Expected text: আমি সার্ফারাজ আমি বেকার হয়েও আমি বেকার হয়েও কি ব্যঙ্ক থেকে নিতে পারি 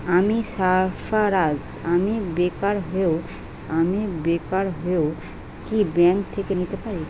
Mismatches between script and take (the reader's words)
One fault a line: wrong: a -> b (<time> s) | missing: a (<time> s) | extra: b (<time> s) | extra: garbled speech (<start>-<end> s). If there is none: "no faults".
no faults